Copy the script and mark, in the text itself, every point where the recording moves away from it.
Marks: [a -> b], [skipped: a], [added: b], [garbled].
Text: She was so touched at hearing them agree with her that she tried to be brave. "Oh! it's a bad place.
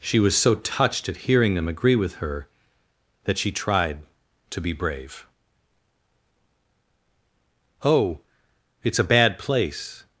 She was so touched at hearing them agree with her that she tried to be brave. "Oh! it's a bad place.